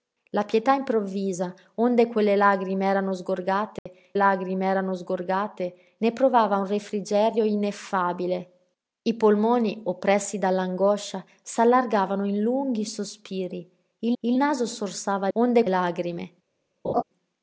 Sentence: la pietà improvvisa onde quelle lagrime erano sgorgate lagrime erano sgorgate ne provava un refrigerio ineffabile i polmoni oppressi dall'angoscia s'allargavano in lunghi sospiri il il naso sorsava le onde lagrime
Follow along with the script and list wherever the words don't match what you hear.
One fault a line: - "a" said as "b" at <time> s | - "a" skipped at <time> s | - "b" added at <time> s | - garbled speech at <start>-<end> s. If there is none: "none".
none